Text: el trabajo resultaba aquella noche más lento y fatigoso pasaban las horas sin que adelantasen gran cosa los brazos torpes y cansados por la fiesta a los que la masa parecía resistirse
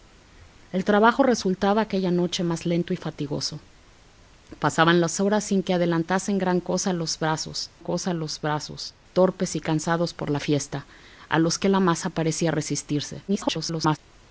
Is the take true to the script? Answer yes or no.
no